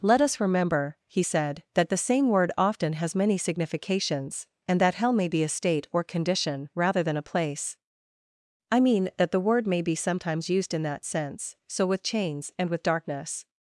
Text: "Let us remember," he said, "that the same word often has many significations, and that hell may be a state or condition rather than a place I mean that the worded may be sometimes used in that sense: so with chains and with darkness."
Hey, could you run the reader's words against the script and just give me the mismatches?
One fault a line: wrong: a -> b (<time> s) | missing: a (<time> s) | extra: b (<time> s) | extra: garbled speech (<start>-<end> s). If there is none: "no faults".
wrong: worded -> word (9.4 s)